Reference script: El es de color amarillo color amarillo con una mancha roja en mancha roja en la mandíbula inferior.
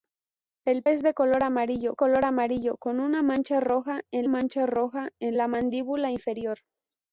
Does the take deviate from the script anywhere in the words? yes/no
no